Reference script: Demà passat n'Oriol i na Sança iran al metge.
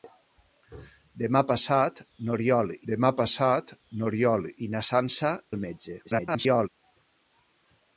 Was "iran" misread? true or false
true